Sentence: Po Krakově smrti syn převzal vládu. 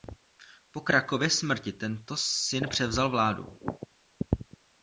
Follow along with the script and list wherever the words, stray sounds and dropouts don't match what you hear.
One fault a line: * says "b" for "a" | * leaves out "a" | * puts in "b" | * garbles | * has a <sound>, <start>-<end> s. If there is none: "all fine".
* puts in "tento"